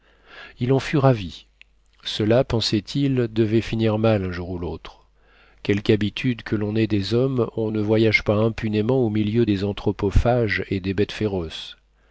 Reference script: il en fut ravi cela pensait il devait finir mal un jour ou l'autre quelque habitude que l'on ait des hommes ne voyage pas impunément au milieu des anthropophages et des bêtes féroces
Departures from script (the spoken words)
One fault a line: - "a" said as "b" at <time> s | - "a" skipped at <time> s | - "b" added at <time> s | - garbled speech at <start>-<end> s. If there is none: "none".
- "on" added at 7.5 s